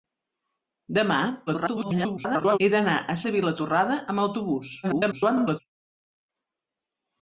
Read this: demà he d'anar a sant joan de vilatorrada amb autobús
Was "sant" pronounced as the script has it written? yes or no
no